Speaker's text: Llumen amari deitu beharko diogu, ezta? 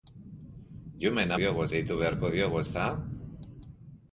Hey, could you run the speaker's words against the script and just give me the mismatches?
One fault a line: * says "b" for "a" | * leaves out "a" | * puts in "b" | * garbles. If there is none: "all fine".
* says "diogu" for "amari"